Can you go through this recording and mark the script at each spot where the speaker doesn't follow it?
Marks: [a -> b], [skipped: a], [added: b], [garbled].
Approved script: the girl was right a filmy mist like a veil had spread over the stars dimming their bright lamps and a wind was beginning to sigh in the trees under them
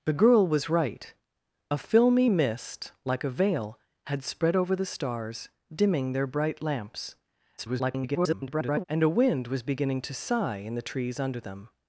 the girl was right a filmy mist like a veil had spread over the stars dimming their bright lamps [garbled] and a wind was beginning to sigh in the trees under them